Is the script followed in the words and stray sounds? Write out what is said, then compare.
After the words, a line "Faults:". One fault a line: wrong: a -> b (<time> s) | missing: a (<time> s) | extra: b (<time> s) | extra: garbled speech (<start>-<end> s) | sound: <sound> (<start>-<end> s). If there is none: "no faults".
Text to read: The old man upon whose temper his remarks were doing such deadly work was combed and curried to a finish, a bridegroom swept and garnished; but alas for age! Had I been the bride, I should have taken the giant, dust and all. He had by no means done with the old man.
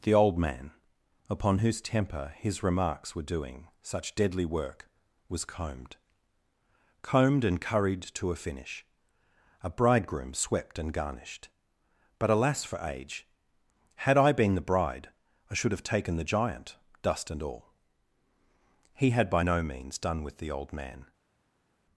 The old man upon whose temper his remarks were doing such deadly work was combed combed and curried to a finish, a bridegroom swept and garnished; but alas for age! Had I been the bride, I should have taken the giant, dust and all. He had by no means done with the old man.
Faults:
extra: combed (7.0 s)